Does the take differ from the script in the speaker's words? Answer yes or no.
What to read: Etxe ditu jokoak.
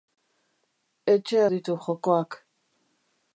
no